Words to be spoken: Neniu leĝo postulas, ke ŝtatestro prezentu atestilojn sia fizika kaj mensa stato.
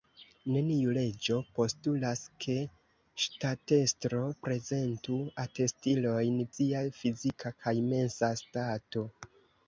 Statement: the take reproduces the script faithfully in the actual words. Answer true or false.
true